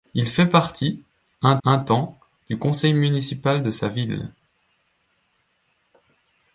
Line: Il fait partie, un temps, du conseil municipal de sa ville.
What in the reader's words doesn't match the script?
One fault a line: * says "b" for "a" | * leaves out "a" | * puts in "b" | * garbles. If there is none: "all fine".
* puts in "un"